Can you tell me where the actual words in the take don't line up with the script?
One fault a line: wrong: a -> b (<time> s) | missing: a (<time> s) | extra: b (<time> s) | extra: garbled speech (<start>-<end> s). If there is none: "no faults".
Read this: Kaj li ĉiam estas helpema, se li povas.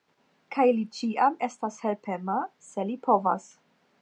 no faults